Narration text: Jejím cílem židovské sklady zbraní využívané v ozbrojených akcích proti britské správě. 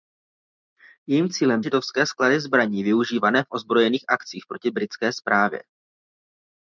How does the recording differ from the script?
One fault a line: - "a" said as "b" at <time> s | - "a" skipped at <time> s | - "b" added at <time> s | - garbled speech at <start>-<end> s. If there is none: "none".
none